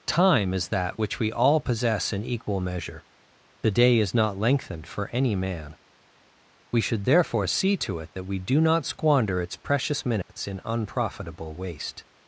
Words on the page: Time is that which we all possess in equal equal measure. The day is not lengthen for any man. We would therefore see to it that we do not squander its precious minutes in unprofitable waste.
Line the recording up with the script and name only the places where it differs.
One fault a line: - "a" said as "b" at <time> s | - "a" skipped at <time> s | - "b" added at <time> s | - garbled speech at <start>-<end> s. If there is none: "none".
- "equal" skipped at 2.6 s
- "lengthen" said as "lengthened" at 4.4 s
- "would" said as "should" at 6.8 s